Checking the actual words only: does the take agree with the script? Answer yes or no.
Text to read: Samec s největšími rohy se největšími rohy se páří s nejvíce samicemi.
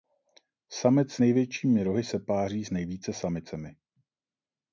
no